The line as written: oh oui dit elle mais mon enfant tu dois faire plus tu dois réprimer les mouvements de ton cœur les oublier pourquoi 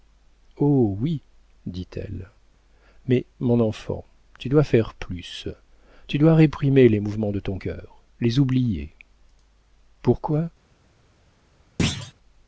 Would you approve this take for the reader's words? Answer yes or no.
yes